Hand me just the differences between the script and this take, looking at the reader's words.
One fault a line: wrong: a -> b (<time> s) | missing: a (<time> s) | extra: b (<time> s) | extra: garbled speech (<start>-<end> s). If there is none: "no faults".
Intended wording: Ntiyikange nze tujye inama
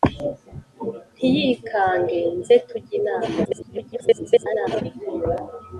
extra: garbled speech (3.4-4.8 s)